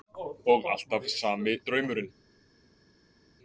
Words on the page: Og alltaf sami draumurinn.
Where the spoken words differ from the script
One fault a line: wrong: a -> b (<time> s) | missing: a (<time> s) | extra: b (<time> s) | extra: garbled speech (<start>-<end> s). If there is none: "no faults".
no faults